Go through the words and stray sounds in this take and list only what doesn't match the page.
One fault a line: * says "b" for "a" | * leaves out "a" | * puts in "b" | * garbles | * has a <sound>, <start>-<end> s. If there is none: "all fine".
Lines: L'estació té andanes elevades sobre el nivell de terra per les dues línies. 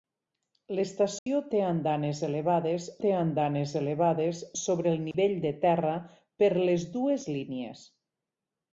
* has a dropout, 1.2-1.3 s
* puts in "té andanes elevades"
* has a dropout, 5.1-5.1 s